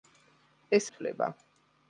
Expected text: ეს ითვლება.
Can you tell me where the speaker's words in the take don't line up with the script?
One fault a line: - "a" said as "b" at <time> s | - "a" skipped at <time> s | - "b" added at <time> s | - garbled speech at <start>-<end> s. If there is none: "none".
none